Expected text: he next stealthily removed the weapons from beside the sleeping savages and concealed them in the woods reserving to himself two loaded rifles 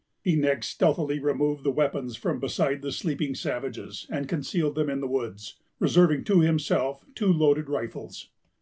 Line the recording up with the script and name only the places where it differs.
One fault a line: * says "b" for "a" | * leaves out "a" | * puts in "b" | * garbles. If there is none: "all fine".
all fine